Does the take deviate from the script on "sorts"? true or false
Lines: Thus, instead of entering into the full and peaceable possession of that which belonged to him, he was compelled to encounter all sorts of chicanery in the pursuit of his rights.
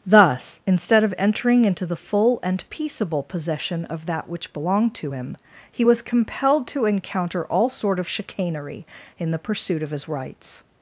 true